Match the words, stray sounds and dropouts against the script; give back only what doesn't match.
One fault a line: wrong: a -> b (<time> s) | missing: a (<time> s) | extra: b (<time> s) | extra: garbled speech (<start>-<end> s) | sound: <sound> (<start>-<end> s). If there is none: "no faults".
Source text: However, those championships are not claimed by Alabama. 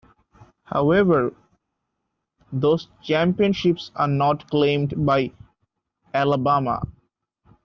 no faults